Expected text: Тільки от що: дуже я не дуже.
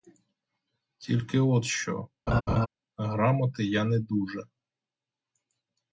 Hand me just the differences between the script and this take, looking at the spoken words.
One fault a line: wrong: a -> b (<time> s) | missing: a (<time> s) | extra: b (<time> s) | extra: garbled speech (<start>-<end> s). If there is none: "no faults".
wrong: дуже -> грамоти (3.0 s)